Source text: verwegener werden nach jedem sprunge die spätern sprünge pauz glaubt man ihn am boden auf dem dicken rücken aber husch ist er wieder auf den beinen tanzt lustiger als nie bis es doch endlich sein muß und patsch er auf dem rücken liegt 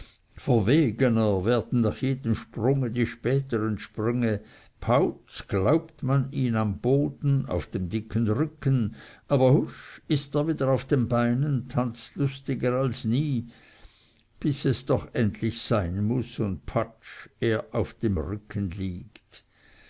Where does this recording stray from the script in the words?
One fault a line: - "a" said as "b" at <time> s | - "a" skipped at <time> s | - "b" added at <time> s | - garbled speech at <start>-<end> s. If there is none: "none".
none